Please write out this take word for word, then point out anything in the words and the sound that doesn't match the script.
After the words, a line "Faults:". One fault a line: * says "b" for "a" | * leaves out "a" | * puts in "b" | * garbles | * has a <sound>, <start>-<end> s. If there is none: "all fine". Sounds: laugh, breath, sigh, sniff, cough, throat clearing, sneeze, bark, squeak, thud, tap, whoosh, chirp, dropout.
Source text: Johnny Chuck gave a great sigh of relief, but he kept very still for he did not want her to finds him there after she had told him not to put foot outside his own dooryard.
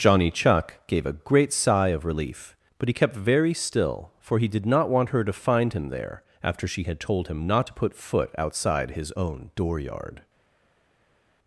Johnny Chuck gave a great sigh of relief, but he kept very still for he did not want her to find him there after she had told him not to put foot outside his own dooryard.
Faults:
* says "find" for "finds"